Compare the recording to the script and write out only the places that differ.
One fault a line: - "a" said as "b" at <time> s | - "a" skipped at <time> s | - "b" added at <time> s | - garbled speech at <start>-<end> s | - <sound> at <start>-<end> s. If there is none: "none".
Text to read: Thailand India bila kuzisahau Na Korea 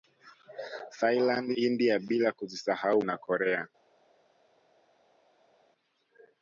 none